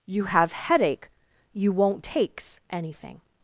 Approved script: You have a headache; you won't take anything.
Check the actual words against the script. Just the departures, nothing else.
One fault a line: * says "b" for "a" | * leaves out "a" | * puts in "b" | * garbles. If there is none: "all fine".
* leaves out "a"
* says "takes" for "take"